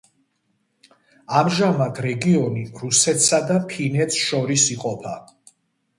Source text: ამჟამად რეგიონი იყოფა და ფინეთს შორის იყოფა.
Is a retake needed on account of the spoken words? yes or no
yes